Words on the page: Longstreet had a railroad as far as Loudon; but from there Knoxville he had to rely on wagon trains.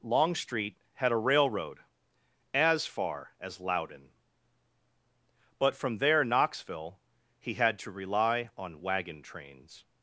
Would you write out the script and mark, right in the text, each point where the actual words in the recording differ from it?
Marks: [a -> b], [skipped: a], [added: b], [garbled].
Longstreet had a railroad as far as Loudon; but from there Knoxville he had to rely on wagon trains.